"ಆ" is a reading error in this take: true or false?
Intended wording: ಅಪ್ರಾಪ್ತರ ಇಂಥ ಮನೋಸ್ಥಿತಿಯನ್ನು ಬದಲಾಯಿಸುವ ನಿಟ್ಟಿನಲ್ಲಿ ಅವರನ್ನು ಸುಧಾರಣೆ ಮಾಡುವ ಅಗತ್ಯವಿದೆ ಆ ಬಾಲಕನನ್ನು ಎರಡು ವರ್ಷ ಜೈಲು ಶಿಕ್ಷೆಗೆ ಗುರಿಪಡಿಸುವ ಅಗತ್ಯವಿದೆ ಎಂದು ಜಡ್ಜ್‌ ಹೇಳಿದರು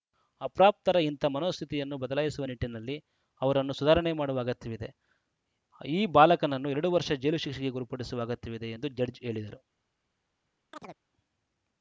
true